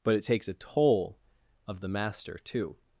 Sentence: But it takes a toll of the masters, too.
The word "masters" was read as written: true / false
false